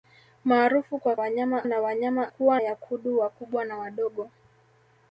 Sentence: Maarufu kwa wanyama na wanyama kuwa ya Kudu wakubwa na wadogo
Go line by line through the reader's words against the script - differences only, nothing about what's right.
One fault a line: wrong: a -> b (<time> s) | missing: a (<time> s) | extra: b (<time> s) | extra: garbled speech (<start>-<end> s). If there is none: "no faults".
no faults